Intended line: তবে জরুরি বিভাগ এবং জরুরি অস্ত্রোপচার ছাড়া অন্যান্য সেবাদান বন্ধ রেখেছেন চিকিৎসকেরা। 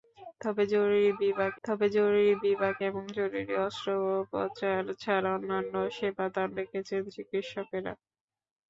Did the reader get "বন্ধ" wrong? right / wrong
wrong